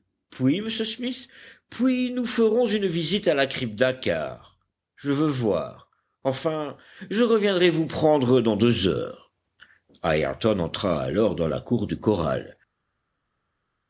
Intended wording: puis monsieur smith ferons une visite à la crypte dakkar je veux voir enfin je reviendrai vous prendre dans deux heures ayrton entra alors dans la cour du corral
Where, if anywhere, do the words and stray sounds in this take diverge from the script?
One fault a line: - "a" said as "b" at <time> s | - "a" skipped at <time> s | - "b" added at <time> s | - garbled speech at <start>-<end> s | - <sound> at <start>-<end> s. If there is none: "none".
- "puis nous" added at 1.7 s